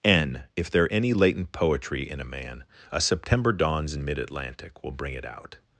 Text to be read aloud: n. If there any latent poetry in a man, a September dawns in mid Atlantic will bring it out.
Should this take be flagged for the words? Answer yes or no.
no